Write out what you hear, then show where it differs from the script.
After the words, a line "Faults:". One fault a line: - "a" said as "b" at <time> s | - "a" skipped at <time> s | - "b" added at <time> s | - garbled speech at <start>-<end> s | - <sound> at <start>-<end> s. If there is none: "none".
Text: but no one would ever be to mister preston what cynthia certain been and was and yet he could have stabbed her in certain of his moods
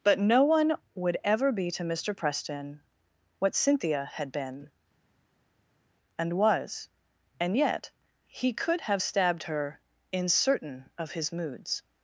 but no one would ever be to mister preston what cynthia had been and was and yet he could have stabbed her in certain of his moods
Faults:
- "certain" said as "had" at 4.0 s